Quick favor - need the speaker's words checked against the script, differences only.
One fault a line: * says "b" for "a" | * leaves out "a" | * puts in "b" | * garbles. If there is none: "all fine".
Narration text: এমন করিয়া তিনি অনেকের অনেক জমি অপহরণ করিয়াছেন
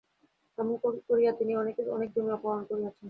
all fine